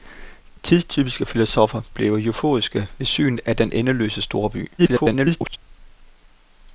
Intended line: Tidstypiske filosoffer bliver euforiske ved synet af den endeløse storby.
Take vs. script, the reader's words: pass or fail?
fail